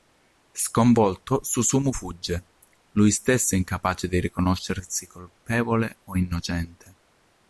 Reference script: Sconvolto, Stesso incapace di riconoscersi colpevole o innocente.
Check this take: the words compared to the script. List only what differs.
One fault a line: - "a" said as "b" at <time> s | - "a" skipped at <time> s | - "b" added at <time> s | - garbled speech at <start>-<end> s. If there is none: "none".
- "Susumu fugge lui" added at 1.4 s